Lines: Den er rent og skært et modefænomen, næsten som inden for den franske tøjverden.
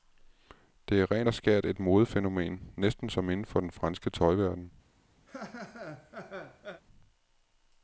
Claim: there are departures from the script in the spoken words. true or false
true